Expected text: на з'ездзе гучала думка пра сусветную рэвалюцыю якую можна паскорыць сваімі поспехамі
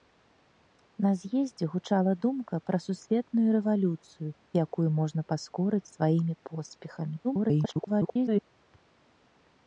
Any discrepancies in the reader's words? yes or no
yes